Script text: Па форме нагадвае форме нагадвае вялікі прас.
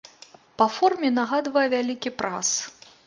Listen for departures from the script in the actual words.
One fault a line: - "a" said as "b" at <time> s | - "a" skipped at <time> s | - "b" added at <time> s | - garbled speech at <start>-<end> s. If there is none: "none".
- "форме нагадвае" skipped at 1.7 s